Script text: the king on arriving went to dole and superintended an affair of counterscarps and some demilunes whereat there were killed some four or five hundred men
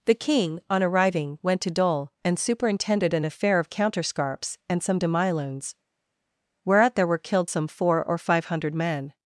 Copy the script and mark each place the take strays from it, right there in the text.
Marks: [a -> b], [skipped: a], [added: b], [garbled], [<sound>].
the king on arriving went to dole and superintended an affair of counterscarps and some demilunes whereat there were killed some four or five hundred men